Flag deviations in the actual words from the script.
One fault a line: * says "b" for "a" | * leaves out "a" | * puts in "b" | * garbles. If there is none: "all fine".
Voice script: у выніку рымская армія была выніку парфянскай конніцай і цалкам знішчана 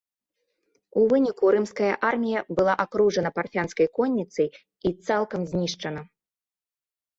* says "акружана" for "выніку"